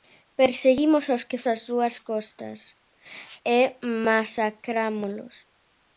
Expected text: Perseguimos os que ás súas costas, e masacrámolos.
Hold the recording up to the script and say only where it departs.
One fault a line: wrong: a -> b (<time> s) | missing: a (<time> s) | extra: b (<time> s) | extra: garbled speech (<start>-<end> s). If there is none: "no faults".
no faults